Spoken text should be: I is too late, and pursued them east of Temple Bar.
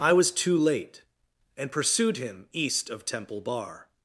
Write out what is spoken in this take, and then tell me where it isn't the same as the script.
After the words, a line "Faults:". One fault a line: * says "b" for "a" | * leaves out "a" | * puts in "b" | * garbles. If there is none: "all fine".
I was too late, and pursued him east of Temple Bar.
Faults:
* says "was" for "is"
* says "him" for "them"